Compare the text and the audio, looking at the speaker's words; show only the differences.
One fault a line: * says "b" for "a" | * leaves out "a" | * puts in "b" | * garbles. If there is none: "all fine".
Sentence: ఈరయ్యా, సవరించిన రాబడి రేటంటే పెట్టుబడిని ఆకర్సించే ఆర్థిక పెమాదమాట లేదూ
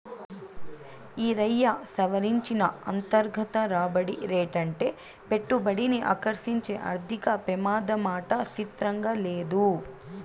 * puts in "అంతర్గత"
* puts in "సిత్రంగా"